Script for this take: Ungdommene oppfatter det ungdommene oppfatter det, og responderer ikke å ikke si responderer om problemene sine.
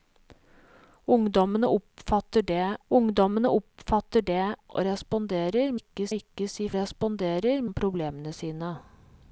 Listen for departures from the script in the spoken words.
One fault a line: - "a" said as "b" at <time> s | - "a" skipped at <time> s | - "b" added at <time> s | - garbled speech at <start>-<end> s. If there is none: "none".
none